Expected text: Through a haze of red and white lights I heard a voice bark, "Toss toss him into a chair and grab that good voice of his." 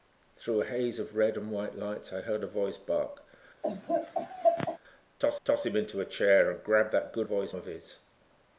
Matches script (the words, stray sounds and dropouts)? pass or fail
fail